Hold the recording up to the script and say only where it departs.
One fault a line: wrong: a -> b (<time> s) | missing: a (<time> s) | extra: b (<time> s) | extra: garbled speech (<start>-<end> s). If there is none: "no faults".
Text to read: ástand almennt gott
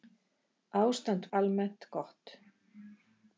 no faults